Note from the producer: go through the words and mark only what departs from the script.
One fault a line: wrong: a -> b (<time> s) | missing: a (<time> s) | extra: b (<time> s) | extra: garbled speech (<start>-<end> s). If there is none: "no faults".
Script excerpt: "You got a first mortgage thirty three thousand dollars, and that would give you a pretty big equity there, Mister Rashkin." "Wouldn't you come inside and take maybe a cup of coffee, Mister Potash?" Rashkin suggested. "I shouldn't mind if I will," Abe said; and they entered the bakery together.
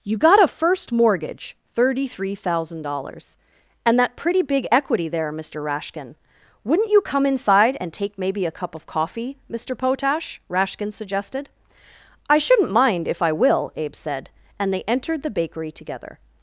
missing: would give you a (4.1 s)